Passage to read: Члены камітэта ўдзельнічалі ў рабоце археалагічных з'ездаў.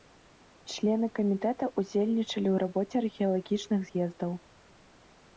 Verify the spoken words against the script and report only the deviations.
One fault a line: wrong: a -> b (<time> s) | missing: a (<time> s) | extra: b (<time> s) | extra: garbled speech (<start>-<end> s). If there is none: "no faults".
no faults